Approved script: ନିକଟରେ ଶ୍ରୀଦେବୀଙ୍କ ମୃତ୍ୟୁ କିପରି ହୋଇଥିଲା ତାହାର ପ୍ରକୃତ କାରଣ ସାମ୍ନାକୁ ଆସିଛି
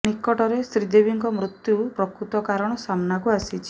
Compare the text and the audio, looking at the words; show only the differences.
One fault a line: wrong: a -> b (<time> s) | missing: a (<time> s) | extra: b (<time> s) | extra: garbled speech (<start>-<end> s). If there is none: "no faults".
missing: କିପରି ହୋଇଥିଲା ତାହାର (1.8 s)